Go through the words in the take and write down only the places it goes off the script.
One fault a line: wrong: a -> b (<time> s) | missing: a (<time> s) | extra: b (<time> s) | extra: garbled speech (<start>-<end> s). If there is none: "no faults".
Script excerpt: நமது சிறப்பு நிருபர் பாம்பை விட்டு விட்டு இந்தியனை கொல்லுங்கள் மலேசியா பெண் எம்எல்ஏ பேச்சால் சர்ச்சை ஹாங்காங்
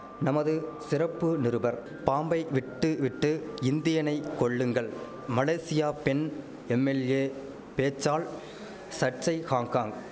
no faults